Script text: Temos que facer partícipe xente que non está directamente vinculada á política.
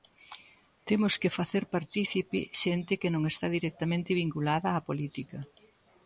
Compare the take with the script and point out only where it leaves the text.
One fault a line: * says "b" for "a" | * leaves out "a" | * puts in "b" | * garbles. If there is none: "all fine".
all fine